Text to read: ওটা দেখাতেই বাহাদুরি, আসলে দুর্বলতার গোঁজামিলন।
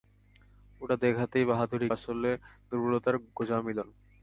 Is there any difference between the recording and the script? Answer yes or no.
no